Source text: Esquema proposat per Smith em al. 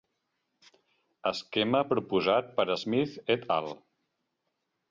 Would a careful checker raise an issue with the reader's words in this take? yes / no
yes